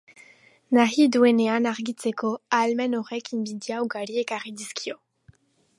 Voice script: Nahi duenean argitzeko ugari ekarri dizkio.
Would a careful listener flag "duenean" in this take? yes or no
no